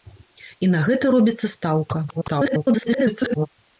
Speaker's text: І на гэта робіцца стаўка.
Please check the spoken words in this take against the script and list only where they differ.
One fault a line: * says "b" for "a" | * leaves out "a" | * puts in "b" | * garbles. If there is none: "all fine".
* garbles